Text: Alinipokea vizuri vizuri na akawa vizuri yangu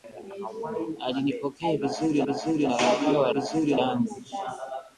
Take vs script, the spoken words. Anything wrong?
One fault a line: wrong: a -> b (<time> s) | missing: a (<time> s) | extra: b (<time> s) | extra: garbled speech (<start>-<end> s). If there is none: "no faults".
no faults